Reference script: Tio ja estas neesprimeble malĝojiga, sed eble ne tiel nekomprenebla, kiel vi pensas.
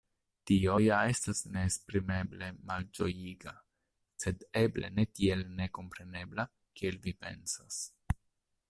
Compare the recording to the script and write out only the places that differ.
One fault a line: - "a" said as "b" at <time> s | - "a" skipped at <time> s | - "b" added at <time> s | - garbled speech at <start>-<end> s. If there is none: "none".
none